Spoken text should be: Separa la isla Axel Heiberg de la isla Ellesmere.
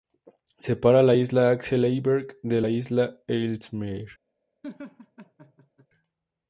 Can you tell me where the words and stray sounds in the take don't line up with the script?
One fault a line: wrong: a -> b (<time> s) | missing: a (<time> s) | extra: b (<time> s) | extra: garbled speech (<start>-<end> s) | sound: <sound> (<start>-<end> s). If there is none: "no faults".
sound: laugh (4.6-5.9 s)